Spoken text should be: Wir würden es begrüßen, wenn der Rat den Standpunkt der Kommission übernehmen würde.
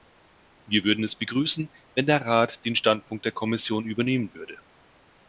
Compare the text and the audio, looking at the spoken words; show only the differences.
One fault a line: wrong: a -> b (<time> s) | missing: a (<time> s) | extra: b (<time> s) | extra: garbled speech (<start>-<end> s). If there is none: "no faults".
no faults